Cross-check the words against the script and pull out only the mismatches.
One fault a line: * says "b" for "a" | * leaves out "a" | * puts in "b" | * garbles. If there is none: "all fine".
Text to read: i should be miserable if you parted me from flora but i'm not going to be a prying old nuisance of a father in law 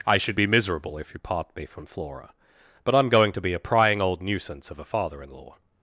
* says "part" for "parted"
* leaves out "not"